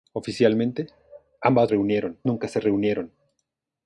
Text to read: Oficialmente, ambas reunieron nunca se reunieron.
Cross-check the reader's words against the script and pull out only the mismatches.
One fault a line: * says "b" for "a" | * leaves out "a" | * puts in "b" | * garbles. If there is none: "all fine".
all fine